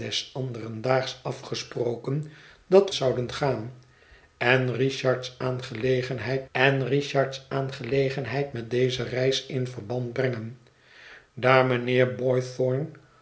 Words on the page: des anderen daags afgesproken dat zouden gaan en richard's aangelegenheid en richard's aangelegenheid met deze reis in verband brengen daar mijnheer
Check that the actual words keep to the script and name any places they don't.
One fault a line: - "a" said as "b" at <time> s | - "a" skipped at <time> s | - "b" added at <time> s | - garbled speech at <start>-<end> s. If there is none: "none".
none